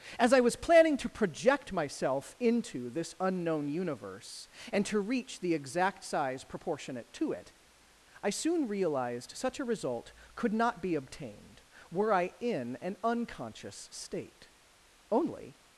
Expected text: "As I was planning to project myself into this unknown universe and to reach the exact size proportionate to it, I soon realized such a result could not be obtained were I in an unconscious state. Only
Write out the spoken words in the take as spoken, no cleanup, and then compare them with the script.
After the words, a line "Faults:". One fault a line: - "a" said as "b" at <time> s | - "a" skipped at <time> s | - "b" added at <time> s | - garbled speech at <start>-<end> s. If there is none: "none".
"As I was planning to project myself into this unknown universe and to reach the exact size proportionate to it, I soon realized such a result could not be obtained were I in an unconscious state. Only
Faults:
none